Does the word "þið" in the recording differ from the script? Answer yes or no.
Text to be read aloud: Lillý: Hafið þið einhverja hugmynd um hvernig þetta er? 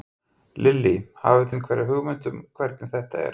yes